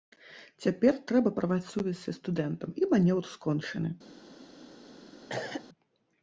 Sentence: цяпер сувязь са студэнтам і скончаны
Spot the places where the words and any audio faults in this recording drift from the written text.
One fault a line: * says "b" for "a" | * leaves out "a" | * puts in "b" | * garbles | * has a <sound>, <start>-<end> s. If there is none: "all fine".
* puts in "трэба парваць"
* puts in "манеўр"
* has a cough, 5.3-5.7 s